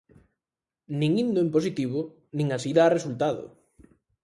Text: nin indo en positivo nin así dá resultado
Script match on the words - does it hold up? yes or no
yes